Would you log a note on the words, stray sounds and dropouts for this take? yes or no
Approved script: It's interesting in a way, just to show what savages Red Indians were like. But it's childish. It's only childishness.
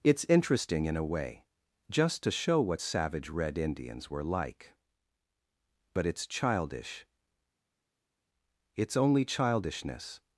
yes